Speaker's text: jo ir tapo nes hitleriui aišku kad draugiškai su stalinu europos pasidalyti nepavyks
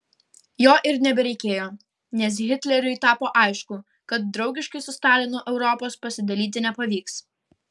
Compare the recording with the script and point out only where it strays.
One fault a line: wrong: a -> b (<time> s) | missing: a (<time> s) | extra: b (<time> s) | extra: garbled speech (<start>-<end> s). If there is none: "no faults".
wrong: tapo -> nebereikėjo (1.1 s)
extra: tapo (3.0 s)